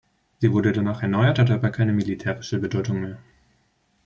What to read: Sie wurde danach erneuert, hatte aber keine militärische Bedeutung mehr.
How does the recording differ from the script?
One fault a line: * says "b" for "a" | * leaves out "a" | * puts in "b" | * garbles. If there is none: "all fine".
all fine